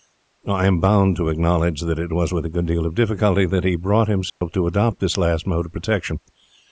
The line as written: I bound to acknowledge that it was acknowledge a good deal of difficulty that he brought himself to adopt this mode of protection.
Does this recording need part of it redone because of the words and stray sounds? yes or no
yes